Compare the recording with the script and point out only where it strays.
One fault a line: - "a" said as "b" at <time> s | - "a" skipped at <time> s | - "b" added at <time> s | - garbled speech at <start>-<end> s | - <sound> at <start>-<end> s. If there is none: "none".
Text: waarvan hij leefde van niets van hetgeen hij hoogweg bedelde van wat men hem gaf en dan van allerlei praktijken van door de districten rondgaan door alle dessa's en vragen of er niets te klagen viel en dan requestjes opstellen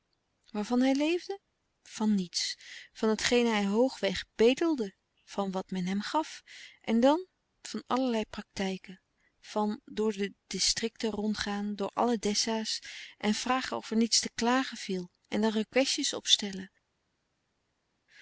none